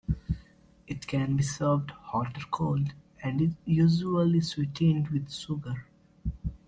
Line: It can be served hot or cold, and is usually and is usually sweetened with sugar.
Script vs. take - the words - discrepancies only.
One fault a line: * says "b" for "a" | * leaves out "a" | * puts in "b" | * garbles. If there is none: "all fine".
* leaves out "and is usually"